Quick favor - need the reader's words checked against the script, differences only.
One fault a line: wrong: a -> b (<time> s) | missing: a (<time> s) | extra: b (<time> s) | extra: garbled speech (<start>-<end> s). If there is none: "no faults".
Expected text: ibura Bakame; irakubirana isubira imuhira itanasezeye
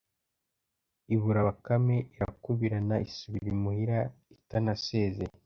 no faults